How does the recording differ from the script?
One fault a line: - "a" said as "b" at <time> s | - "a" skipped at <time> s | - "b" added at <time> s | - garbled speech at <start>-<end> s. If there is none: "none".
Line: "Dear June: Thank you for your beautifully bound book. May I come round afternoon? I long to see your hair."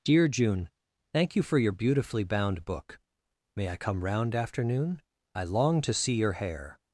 none